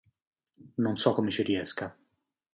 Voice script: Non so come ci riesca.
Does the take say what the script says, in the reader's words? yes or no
yes